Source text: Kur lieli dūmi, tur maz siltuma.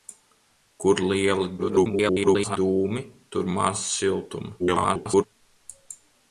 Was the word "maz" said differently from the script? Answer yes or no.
no